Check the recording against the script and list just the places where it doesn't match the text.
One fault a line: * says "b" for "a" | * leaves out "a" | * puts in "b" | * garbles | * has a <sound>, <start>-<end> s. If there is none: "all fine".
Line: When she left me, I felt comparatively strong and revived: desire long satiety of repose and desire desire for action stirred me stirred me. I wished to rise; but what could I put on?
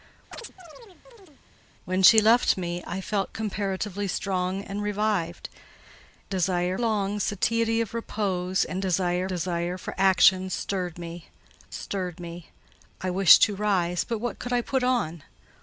* has a chirp, 0.3-1.4 s